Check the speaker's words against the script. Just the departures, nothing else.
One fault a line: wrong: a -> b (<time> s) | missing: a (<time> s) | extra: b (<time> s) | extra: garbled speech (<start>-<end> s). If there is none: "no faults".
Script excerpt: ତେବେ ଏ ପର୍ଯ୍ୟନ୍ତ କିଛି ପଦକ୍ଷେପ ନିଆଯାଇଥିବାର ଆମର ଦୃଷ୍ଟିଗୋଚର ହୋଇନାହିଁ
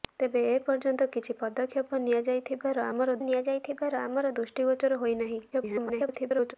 extra: ନିଆଯାଇଥିବାର ଆମର (3.2 s)
extra: garbled speech (5.5-6.5 s)